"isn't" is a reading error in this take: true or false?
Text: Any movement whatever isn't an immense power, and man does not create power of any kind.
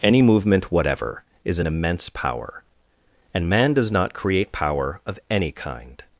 true